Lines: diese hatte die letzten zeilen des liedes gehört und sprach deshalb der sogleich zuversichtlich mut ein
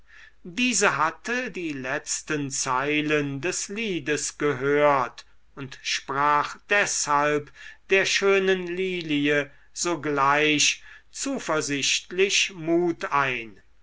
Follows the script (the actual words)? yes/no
no